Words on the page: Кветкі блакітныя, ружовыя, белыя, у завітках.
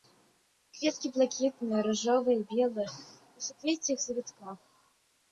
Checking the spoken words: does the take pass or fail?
fail